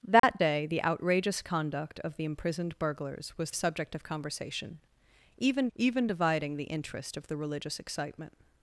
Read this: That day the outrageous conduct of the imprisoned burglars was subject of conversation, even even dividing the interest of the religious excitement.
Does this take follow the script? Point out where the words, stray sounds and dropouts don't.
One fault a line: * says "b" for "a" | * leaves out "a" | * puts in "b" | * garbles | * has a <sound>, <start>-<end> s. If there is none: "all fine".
* has a dropout, 0.2-0.2 s